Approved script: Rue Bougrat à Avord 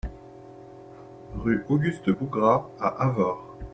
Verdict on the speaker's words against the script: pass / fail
fail